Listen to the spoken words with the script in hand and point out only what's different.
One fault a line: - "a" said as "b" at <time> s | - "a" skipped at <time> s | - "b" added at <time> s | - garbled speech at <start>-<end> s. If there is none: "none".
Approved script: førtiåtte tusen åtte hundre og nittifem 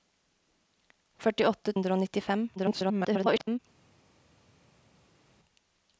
- "tusen åtte" skipped at 1.8 s
- garbled speech at 2.6-3.6 s